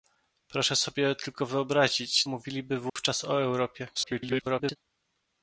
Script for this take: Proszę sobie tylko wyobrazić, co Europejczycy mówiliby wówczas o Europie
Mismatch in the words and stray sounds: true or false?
true